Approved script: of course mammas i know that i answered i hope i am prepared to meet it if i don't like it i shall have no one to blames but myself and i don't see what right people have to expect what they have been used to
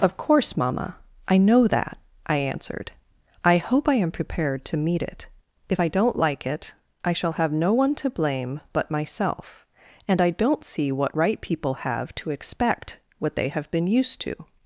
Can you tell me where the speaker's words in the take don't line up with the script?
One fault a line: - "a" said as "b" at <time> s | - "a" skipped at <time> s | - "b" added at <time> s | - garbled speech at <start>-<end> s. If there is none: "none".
- "mammas" said as "mamma" at 0.6 s
- "blames" said as "blame" at 8.1 s